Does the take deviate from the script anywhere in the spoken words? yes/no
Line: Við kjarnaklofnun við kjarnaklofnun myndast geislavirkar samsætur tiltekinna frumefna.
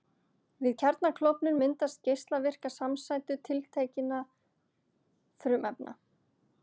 yes